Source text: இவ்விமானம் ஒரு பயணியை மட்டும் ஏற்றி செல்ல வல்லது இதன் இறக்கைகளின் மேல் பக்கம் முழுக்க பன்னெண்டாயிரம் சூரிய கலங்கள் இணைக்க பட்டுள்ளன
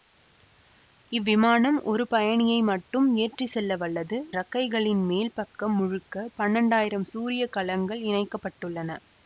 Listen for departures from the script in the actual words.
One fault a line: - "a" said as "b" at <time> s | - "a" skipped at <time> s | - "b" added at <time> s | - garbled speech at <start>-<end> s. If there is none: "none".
- "இதன்" skipped at 4.2 s